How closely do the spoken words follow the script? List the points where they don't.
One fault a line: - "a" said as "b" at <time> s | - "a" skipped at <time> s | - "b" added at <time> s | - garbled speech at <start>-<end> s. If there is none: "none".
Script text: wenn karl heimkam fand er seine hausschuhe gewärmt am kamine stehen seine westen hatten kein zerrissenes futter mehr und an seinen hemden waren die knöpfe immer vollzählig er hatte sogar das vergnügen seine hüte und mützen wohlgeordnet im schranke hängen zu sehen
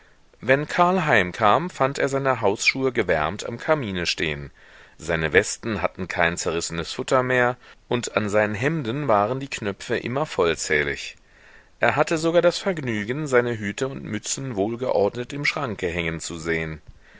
none